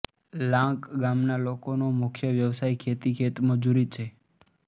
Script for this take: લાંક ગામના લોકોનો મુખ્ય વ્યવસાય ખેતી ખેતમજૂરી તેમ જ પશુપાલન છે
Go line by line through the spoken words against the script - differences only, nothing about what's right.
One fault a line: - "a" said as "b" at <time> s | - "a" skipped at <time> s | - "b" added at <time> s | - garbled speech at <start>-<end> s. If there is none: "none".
- "તેમ જ પશુપાલન" skipped at 3.9 s